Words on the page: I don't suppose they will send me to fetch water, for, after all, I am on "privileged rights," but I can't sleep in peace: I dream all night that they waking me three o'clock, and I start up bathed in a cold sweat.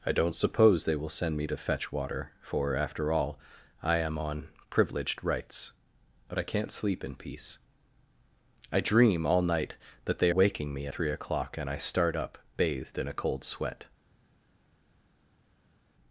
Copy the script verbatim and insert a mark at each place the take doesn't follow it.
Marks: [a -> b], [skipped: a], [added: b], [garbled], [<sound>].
I don't suppose they will send me to fetch water, for, after all, I am on "privileged rights," but I can't sleep in peace: I dream all night that they waking me three o'clock, and I start up bathed in a cold sweat.